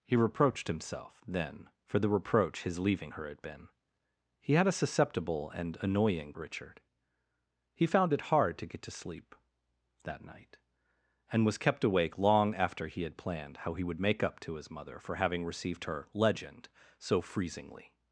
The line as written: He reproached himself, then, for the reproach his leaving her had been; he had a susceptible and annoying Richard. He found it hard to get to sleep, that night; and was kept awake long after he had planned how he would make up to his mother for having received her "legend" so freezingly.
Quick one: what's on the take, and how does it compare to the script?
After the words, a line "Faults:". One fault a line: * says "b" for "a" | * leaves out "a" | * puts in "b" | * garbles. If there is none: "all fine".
He reproached himself, then, for the reproach his leaving her had been; he had a susceptible and annoying Richard. He found it hard to get to sleep, that night; and was kept awake long after he had planned how he would make up to his mother for having received her "legend" so freezingly.
Faults:
all fine